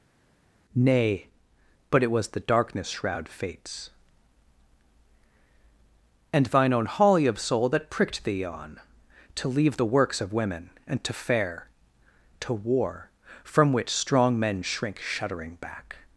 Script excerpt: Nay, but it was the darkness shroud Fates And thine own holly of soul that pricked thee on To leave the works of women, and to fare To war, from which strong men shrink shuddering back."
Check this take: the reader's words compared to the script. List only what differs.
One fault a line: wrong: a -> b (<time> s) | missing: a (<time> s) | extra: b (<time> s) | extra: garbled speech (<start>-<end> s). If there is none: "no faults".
no faults